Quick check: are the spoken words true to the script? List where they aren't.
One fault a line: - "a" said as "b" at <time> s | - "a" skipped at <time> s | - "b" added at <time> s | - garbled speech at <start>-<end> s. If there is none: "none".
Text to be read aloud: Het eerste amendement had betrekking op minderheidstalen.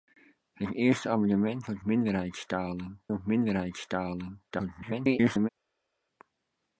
- "betrekking" said as "minderheidstalen" at 1.8 s
- garbled speech at 4.5-5.5 s